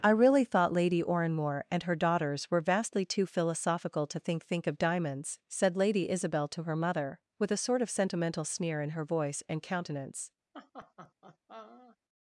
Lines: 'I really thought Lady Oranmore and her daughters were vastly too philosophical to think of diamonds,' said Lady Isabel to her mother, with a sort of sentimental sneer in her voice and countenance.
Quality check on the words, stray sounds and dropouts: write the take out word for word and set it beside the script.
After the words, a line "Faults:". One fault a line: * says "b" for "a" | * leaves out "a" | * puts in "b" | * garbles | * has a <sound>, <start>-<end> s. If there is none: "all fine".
'I really thought Lady Oranmore and her daughters were vastly too philosophical to think think of diamonds,' said Lady Isabel to her mother, with a sort of sentimental sneer in her voice and countenance.
Faults:
* puts in "think"
* has a laugh, 10.5-12.0 s